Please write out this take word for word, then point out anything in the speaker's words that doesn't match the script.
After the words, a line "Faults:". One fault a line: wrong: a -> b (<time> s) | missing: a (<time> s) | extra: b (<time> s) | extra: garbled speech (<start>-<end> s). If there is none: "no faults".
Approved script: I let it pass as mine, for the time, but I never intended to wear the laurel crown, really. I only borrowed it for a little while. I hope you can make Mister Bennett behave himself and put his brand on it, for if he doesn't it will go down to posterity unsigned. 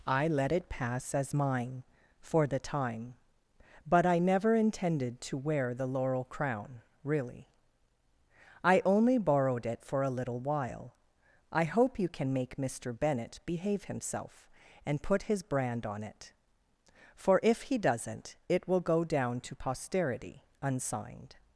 I let it pass as mine, for the time, but I never intended to wear the laurel crown, really. I only borrowed it for a little while. I hope you can make Mister Bennett behave himself and put his brand on it, for if he doesn't it will go down to posterity unsigned.
Faults:
no faults